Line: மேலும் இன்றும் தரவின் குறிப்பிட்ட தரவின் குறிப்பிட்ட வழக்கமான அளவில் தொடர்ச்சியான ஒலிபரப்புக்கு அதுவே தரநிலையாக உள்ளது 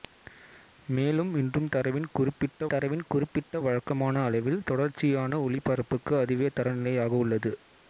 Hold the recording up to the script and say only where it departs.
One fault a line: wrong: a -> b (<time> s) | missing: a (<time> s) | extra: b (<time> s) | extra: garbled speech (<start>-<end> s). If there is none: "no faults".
no faults